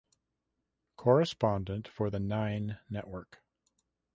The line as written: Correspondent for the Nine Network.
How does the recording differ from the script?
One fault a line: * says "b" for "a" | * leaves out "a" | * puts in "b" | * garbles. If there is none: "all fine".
all fine